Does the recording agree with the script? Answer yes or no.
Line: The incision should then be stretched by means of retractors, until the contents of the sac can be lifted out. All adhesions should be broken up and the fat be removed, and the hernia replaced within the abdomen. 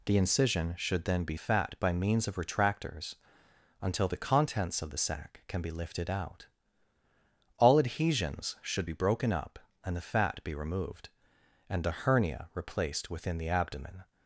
no